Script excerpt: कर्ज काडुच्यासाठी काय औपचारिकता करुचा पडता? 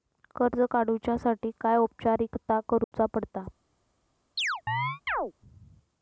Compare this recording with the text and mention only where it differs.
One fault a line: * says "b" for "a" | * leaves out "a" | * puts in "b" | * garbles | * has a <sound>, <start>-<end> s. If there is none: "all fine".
* has a dropout, 2.8-2.9 s
* has a chirp, 4.4-5.3 s